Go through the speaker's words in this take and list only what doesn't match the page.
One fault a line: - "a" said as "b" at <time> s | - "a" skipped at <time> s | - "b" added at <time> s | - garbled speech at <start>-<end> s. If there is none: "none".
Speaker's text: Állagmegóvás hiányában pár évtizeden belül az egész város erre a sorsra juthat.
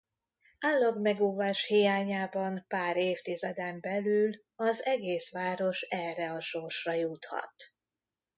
none